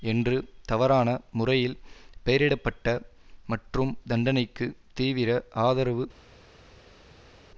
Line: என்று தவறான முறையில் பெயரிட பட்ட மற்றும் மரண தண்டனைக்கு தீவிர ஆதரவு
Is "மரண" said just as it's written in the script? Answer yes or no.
no